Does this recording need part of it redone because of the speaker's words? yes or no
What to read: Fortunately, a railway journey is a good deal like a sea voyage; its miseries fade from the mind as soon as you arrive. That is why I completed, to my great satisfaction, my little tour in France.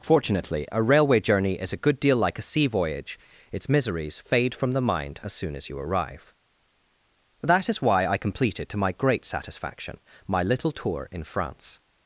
no